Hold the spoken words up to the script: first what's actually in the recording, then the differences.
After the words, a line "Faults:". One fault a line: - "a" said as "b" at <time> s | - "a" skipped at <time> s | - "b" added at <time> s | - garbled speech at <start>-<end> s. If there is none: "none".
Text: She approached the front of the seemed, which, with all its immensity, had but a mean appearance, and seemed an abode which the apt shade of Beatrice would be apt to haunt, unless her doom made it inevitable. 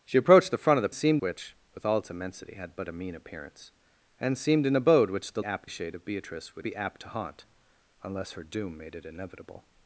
She approached the front of the seemed, which, with all its immensity, had but a mean appearance, and seemed an abode which the apt shade of Beatrice would be apt to haunt, unless her doom made it inevitable.
Faults:
none